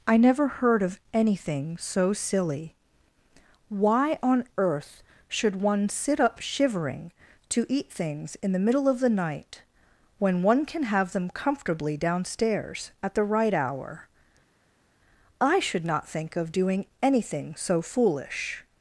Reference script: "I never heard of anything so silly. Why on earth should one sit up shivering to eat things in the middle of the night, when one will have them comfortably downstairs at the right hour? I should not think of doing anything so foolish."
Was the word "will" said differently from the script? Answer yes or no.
yes